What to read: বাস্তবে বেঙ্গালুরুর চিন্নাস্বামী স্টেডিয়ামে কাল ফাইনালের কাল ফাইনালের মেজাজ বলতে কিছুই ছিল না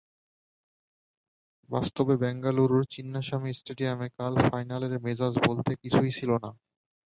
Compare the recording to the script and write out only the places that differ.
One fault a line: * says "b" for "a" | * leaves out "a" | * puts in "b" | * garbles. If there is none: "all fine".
* leaves out "কাল ফাইনালের"